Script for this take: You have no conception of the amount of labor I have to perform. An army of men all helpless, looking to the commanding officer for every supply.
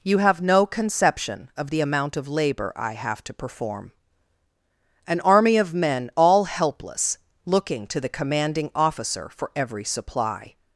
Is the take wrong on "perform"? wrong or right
right